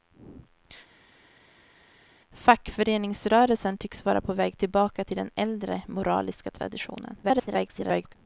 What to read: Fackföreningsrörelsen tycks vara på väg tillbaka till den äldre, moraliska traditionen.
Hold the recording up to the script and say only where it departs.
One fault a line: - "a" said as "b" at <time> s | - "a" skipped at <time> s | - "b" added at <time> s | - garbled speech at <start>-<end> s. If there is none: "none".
- garbled speech at 7.2-8.2 s